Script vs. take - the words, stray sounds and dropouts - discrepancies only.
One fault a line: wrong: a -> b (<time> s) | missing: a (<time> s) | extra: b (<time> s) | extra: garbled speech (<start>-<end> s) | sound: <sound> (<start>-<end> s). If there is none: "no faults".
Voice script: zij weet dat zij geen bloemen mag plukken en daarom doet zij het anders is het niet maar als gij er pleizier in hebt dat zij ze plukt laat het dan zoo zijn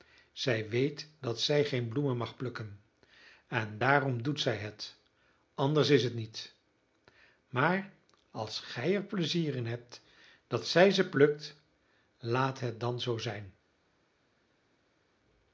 no faults